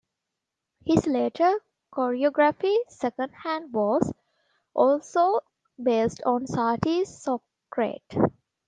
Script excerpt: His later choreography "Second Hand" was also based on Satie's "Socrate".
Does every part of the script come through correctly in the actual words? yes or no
yes